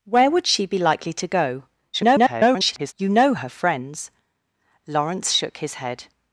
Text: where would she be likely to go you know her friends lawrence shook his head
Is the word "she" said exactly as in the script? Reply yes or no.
yes